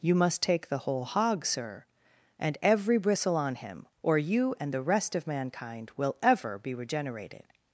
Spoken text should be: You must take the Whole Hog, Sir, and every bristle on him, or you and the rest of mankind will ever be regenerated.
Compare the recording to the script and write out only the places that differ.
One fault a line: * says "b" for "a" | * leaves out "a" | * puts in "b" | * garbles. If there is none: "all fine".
all fine